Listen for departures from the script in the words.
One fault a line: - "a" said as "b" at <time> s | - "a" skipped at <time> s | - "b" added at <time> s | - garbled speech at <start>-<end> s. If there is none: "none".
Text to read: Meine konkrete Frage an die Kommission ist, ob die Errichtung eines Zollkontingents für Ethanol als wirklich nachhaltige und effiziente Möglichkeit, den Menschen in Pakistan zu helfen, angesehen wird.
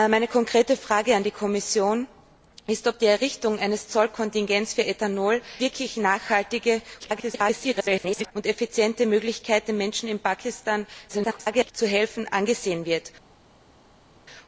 - "als" skipped at 5.4 s
- garbled speech at 7.0-8.3 s
- garbled speech at 11.1-11.7 s